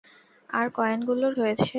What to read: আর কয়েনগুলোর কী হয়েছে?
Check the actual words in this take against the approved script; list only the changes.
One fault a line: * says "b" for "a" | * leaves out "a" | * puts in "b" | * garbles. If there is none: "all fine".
* leaves out "কী"